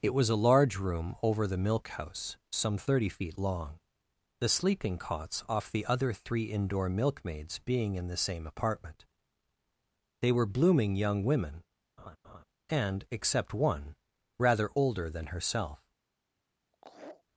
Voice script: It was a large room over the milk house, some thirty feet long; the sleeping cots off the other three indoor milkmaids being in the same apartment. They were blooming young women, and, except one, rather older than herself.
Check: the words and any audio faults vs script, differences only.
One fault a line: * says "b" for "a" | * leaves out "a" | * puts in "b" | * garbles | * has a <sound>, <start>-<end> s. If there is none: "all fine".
* has a laugh, 12.0-12.4 s
* has a laugh, 16.7-17.2 s